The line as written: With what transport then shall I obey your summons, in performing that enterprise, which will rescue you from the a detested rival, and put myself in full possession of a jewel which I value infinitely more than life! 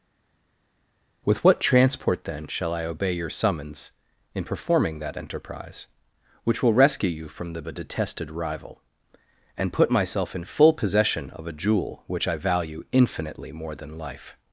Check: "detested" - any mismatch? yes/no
no